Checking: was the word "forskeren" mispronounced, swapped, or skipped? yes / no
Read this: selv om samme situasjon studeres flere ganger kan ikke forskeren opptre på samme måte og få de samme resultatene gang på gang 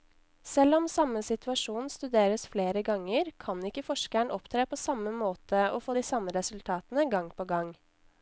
no